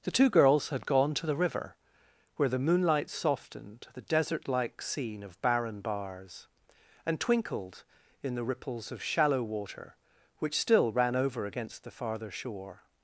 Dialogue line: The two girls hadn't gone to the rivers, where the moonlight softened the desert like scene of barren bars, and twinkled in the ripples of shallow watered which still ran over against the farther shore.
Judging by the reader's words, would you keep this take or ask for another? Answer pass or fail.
fail